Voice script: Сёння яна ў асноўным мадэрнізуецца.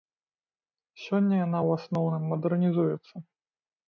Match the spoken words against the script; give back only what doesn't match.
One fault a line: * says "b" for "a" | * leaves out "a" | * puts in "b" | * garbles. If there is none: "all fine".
all fine